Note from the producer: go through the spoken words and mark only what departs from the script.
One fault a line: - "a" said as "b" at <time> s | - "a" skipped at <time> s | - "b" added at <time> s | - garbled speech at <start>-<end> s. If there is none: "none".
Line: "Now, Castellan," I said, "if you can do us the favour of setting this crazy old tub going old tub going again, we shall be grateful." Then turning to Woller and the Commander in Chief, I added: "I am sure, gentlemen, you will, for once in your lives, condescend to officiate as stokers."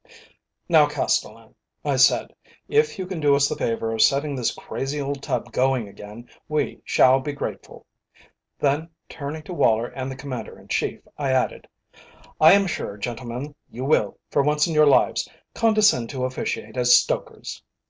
- "old tub going" skipped at 5.9 s